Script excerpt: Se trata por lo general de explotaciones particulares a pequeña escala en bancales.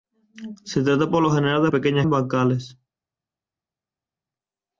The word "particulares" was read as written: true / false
false